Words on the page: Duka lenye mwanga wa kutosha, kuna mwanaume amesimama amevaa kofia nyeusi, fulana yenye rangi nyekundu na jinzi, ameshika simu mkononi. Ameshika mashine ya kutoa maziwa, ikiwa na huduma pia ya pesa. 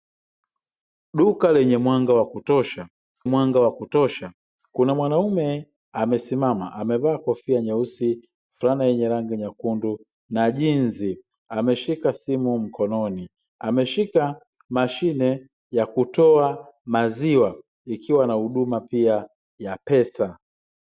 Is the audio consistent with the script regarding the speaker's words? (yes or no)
no